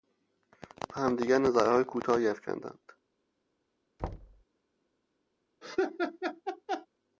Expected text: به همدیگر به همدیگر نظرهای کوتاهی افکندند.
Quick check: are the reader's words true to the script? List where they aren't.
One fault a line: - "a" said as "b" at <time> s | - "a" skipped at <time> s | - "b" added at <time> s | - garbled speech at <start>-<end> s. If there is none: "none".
- "به همدیگر" skipped at 1.4 s